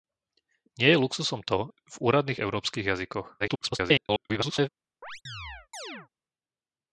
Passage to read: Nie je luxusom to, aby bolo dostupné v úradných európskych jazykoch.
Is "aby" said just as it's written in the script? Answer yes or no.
no